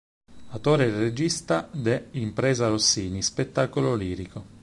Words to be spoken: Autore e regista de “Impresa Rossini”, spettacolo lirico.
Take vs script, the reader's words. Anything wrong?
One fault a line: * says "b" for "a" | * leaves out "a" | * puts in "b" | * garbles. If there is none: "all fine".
all fine